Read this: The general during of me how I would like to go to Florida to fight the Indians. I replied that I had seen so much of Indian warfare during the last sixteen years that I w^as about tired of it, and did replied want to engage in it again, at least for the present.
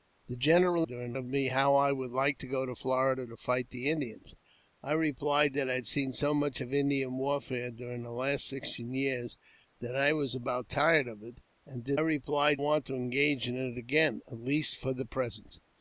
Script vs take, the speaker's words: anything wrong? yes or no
no